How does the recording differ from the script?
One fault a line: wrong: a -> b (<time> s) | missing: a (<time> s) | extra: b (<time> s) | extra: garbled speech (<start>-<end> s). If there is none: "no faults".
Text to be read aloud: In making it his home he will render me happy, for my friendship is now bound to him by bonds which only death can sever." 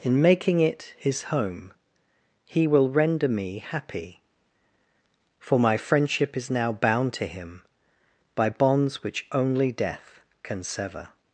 no faults